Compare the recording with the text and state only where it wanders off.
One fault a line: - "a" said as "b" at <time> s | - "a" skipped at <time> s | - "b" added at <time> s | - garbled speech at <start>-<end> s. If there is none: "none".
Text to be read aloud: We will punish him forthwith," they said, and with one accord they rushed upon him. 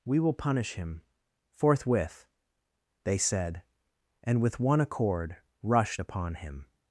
- "they" skipped at 5.4 s